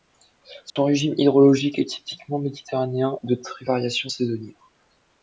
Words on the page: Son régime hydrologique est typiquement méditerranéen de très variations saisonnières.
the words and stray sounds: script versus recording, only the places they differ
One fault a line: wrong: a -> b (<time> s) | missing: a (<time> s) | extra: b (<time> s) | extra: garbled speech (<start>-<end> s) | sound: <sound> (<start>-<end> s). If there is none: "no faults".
sound: dropout (0.7-0.8 s)